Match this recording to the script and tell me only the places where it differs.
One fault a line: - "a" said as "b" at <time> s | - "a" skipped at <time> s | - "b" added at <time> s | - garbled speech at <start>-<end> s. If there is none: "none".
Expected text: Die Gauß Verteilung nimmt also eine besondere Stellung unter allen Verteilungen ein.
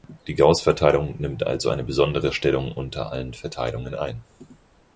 none